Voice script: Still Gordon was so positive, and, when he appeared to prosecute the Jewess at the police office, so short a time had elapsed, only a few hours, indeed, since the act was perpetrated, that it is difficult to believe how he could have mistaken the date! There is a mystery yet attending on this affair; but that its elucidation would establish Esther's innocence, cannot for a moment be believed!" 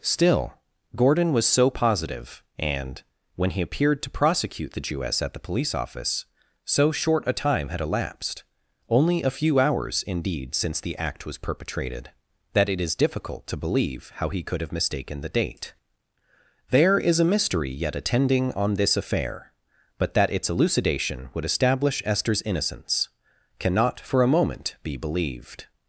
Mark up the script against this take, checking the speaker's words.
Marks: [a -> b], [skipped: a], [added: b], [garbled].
Still Gordon was so positive, and, when he appeared to prosecute the Jewess at the police office, so short a time had elapsed, only a few hours, indeed, since the act was perpetrated, that it is difficult to believe how he could have mistaken the date! There is a mystery yet attending on this affair; but that its elucidation would establish Esther's innocence, cannot for a moment be believed!"